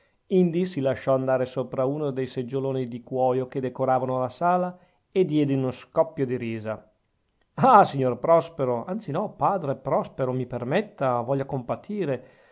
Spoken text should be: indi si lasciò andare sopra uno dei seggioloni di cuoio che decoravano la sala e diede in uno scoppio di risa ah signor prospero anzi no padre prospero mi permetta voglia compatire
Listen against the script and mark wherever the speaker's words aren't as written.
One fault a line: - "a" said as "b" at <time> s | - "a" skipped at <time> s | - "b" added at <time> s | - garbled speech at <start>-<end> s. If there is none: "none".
none